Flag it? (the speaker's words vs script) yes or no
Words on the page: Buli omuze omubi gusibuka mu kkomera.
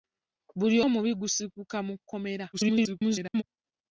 yes